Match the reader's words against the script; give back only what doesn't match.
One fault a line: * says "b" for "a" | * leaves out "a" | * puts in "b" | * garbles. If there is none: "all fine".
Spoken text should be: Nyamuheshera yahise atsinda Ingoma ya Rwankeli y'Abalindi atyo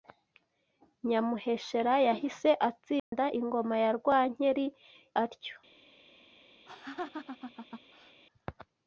* leaves out "y'Abalindi"